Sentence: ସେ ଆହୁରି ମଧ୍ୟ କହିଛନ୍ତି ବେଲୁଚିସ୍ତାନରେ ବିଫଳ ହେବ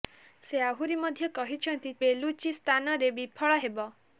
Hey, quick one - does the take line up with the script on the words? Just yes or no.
yes